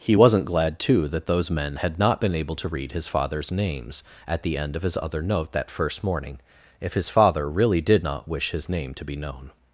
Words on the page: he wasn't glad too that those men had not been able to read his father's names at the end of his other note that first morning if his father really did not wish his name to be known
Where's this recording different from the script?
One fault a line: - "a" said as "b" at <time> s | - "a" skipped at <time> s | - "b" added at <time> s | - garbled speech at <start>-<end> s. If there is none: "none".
none